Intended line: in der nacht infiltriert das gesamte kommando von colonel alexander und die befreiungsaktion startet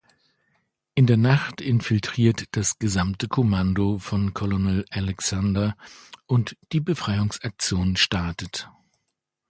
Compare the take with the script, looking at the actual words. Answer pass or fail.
pass